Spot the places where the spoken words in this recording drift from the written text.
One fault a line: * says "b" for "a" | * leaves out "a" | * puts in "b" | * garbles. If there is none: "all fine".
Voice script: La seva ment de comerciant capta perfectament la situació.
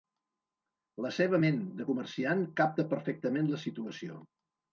all fine